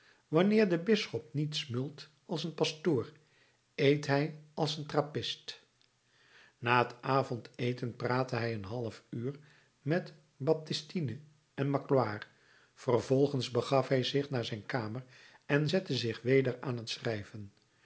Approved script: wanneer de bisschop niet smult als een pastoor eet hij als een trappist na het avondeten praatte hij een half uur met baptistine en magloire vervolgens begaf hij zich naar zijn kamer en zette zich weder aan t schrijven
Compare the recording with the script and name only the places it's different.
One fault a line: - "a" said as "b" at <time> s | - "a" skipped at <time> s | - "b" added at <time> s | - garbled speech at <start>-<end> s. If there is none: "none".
none